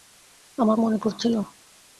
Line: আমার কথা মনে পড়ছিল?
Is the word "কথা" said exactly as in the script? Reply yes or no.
no